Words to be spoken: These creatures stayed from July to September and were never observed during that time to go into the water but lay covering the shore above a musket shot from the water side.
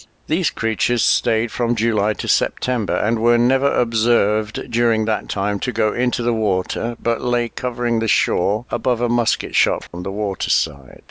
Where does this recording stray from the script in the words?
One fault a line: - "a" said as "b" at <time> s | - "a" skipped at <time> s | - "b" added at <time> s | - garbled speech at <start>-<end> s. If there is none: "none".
none